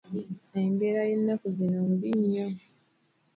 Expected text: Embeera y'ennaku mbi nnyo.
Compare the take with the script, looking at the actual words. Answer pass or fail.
fail